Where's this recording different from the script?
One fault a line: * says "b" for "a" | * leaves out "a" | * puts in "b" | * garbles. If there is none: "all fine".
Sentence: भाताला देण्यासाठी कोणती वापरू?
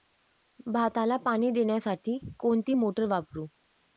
* puts in "पाणी"
* puts in "मोटार"